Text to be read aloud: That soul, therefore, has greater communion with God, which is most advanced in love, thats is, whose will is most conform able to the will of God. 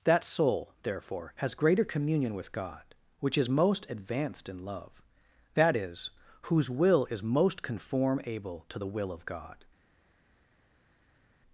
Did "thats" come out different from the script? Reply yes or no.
yes